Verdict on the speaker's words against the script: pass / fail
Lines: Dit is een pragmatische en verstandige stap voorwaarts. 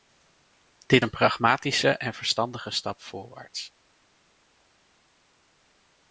fail